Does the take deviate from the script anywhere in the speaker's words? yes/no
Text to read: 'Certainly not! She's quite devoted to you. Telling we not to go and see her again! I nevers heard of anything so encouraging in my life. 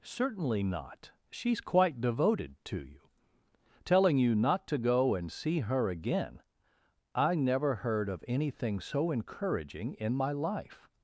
yes